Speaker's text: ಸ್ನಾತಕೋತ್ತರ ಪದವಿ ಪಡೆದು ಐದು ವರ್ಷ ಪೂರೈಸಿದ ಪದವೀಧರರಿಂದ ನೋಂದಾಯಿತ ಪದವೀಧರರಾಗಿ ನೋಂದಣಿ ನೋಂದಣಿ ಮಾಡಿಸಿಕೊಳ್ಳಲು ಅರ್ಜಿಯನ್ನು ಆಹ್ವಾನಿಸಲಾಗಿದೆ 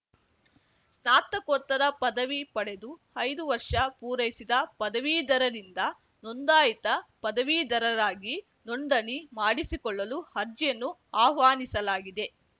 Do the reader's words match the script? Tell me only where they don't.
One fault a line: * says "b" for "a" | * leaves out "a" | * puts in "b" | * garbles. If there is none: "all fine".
* leaves out "ನೋಂದಣಿ"